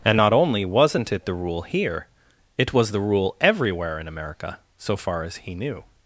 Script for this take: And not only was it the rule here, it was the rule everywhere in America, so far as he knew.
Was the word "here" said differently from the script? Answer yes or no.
no